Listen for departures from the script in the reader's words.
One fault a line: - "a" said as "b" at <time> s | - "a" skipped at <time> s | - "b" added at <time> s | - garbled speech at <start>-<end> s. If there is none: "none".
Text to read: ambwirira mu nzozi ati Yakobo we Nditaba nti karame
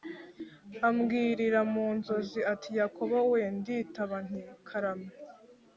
none